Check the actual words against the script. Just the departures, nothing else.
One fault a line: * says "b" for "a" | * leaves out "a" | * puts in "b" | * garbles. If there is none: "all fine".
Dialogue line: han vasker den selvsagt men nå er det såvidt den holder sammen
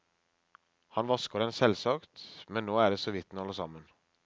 all fine